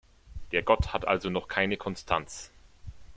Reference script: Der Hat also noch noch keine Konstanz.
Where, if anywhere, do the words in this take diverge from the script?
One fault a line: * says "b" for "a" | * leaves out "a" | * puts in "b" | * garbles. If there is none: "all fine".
* puts in "Gott"
* leaves out "noch"